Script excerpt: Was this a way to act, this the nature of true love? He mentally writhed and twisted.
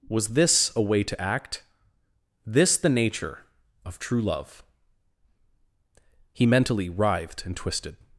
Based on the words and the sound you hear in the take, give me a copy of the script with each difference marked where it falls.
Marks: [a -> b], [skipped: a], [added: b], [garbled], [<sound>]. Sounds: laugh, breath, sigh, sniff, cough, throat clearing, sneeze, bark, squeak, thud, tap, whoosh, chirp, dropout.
Was this a way to act, this the nature of true love? He mentally writhed and twisted.